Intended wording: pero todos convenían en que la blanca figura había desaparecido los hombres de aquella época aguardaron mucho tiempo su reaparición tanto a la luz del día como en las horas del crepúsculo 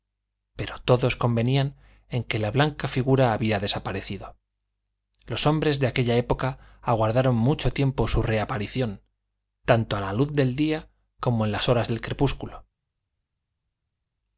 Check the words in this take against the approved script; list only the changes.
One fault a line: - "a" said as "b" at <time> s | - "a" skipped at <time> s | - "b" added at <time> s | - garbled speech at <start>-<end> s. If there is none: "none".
none